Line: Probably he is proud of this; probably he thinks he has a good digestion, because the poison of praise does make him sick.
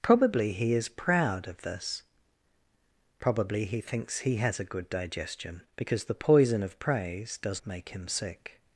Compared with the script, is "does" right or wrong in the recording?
right